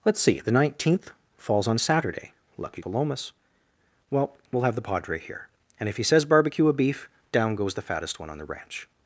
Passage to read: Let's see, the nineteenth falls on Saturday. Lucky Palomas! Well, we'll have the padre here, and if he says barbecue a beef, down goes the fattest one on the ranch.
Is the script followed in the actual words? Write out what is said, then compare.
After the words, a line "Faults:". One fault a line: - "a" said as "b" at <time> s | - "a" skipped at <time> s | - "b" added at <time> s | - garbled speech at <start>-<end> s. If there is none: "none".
Let's see, the nineteenth falls on Saturday. Lucky Palomas! Well, we'll have the padre here, and if he says barbecue a beef, down goes the fattest one on the ranch.
Faults:
none